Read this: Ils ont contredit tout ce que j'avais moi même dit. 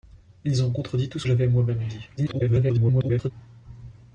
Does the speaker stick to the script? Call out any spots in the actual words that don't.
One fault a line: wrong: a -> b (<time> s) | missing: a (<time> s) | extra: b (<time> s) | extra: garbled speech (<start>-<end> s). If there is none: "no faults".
missing: que (1.3 s)
extra: garbled speech (2.2-3.3 s)